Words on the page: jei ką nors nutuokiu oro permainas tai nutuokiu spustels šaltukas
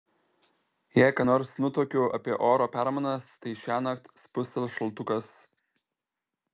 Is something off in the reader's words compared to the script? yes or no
yes